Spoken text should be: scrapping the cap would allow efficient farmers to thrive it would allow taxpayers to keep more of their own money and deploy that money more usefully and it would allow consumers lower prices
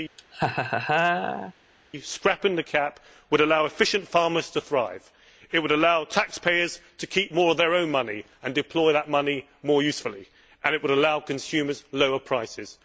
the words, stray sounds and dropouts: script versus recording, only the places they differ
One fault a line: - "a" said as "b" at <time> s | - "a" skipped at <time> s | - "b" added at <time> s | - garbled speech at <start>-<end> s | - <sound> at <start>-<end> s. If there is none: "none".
- laugh at 0.2-1.5 s